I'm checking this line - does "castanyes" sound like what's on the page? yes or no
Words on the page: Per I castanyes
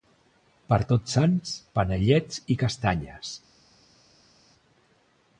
yes